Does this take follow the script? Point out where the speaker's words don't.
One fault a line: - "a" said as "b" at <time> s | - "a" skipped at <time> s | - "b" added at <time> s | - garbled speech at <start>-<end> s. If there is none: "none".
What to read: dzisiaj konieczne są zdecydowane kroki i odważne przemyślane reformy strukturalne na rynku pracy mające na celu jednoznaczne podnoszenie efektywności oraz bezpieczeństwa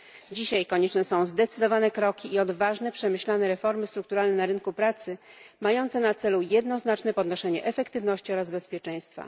none